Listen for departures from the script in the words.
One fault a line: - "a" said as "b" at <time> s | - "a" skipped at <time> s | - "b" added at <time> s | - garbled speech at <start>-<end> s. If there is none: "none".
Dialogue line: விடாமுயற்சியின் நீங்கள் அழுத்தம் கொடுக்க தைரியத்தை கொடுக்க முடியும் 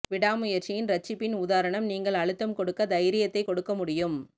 - "இரட்சிப்பின் உதாரணம்" added at 0.9 s